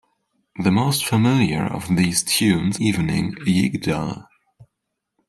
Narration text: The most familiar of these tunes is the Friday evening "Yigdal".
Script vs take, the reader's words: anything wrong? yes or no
yes